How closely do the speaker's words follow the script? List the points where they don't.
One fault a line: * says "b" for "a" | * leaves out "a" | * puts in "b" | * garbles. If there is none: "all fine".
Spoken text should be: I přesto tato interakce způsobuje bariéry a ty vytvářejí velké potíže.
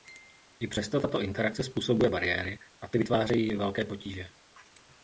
all fine